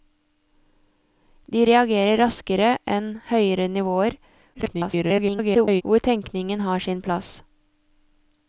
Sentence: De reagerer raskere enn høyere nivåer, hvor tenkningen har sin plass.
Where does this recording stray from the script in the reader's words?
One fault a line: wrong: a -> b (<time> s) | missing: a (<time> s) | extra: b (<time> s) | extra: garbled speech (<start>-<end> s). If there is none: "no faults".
extra: garbled speech (4.5-5.8 s)